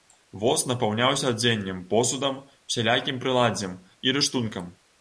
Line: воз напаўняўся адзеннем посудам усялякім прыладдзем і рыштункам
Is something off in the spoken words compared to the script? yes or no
no